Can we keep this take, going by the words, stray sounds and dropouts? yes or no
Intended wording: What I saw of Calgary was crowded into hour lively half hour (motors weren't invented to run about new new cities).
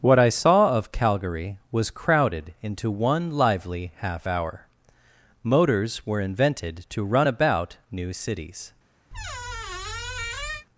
no